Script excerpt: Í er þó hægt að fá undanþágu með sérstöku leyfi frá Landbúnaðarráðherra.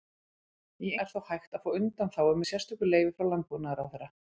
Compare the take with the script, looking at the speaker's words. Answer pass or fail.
pass